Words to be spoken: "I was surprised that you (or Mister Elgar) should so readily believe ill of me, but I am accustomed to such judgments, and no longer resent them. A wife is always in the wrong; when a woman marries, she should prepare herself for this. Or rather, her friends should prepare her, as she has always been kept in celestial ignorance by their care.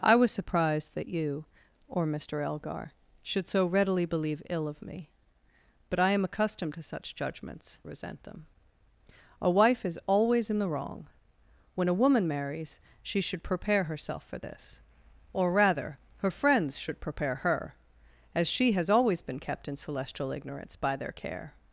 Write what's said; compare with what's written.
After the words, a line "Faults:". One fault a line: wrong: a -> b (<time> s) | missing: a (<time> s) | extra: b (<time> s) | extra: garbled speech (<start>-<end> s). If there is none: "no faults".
"I was surprised that you (or Mister Elgar) should so readily believe ill of me, but I am accustomed to such judgments, resent them. A wife is always in the wrong; when a woman marries, she should prepare herself for this. Or rather, her friends should prepare her, as she has always been kept in celestial ignorance by their care.
Faults:
missing: and no longer (7.8 s)